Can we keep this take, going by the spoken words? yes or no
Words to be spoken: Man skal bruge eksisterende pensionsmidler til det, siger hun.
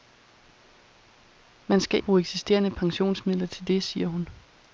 yes